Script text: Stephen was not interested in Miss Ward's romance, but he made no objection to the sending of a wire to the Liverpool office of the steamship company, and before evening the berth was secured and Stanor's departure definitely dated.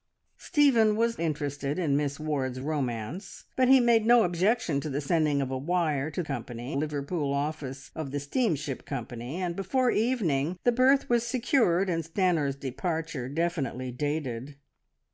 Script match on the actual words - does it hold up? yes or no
no